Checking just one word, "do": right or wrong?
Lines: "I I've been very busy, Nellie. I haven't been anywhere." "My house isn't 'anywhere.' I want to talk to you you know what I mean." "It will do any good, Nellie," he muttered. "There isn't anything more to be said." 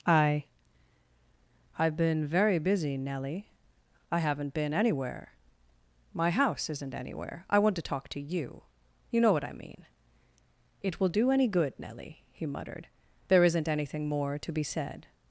right